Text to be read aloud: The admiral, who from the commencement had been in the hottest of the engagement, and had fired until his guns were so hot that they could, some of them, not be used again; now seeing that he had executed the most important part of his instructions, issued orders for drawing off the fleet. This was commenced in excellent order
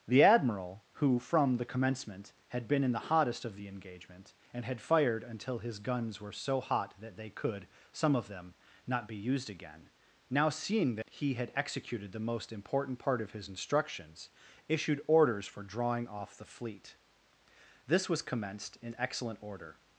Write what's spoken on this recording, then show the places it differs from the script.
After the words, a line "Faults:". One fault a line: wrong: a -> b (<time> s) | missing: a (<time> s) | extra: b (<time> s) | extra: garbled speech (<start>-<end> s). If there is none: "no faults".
The admiral, who from the commencement had been in the hottest of the engagement, and had fired until his guns were so hot that they could, some of them, not be used again; now seeing that he had executed the most important part of his instructions, issued orders for drawing off the fleet. This was commenced in excellent order
Faults:
no faults